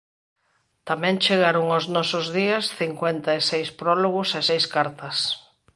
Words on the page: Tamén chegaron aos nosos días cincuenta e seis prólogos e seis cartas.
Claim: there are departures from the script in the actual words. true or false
false